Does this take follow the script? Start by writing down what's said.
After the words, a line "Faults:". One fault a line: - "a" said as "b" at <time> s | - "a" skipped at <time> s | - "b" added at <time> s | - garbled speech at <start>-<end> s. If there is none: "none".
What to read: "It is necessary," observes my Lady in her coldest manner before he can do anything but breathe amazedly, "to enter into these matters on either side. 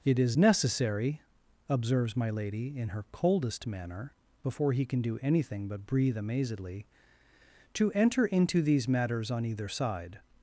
"It is necessary," observes my Lady in her coldest manner before he can do anything but breathe amazedly, "to enter into these matters on either side.
Faults:
none